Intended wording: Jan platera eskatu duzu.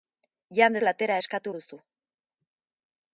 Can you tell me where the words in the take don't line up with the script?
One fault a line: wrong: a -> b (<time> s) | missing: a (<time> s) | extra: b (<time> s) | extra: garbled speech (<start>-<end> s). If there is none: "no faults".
no faults